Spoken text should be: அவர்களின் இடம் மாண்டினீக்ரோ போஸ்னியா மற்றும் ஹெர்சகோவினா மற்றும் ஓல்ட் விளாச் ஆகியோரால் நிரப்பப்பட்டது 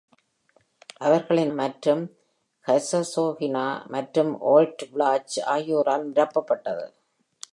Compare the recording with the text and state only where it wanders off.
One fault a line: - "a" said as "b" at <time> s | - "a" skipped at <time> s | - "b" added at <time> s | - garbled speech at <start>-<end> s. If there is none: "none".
- "இடம் மாண்டினீக்ரோ போஸ்னியா" skipped at 1.5 s